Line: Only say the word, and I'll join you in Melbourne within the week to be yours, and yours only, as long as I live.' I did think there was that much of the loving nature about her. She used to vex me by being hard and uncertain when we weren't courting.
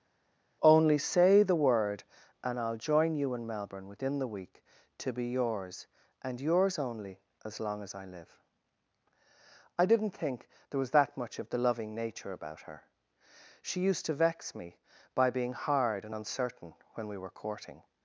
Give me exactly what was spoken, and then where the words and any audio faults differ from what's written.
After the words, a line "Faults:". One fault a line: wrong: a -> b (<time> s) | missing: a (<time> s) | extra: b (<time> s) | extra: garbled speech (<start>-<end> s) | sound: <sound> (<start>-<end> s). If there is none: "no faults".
Only say the word, and I'll join you in Melbourne within the week to be yours, and yours only, as long as I live.' I didn't think there was that much of the loving nature about her. She used to vex me by being hard and uncertain when we were courting.
Faults:
wrong: did -> didn't (9.9 s)
wrong: weren't -> were (17.2 s)